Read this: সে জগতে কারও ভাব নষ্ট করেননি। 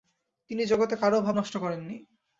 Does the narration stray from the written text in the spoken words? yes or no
yes